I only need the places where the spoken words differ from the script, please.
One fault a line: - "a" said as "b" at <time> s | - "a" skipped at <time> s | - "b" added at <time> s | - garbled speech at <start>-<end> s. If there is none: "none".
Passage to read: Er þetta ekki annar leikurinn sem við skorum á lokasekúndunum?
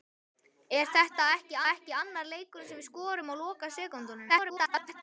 - "ekki" added at 1.7 s
- garbled speech at 4.3-5.0 s